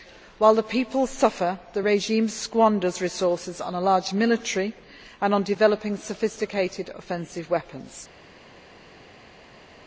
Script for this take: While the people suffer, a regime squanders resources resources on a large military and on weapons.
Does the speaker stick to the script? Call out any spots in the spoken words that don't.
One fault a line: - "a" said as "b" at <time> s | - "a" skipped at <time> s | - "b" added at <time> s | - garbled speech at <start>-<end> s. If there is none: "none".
- "a" said as "the" at 1.7 s
- "resources" skipped at 3.6 s
- "developing sophisticated offensive" added at 5.4 s